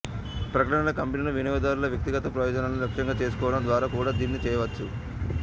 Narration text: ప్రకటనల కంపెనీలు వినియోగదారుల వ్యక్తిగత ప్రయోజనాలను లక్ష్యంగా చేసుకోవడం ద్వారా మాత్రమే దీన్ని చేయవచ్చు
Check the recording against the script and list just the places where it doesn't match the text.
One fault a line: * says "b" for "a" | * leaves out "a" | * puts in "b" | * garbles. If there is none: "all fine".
* says "కూడా" for "మాత్రమే"